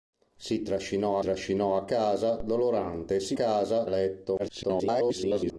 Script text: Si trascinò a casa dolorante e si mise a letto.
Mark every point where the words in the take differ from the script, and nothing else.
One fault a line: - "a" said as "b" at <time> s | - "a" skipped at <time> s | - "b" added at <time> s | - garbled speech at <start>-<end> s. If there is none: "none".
- "trascinò" added at 1.2 s
- "mise" said as "casa" at 3.3 s
- garbled speech at 4.4-5.6 s